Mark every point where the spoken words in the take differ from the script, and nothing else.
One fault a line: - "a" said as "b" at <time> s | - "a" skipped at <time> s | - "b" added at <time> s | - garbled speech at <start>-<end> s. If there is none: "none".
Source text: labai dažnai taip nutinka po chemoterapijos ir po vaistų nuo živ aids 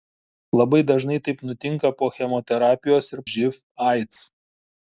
- "po vaistų nuo" skipped at 3.2 s